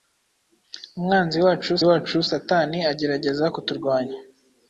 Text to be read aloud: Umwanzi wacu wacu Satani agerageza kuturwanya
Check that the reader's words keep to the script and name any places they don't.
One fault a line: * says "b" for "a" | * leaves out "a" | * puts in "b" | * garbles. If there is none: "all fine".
all fine